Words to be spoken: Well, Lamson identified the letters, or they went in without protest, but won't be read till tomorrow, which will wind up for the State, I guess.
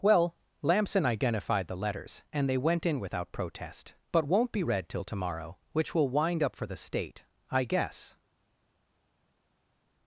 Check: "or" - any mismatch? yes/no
yes